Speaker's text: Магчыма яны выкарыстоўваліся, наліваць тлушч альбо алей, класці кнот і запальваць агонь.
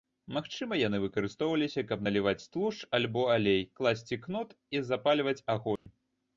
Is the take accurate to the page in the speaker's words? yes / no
no